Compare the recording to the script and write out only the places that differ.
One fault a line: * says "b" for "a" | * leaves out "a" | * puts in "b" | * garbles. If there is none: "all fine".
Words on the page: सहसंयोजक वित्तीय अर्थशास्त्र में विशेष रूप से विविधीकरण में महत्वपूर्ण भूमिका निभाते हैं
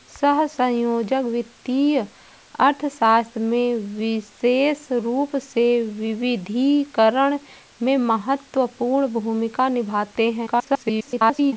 * garbles